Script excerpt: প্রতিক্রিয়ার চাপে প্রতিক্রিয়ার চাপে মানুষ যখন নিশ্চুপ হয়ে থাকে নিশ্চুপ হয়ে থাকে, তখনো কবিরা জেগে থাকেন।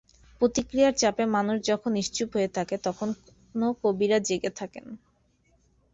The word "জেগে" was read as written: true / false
true